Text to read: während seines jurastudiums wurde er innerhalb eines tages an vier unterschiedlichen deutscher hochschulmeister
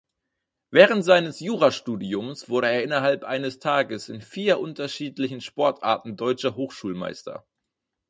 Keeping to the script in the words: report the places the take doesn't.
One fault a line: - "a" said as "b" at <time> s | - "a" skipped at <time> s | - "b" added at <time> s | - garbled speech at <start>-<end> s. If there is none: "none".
- "an" said as "in" at 4.1 s
- "sportarten" added at 5.4 s